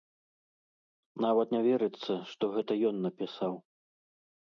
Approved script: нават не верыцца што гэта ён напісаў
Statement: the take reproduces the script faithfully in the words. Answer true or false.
true